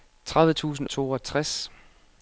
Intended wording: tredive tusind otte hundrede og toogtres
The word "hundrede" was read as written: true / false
false